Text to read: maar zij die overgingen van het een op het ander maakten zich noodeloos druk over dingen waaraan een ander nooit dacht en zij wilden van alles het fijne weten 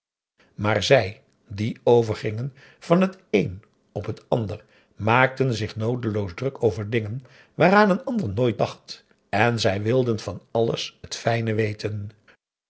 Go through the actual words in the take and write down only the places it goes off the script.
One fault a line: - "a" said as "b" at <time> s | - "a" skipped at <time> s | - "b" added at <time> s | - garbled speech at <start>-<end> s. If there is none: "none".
none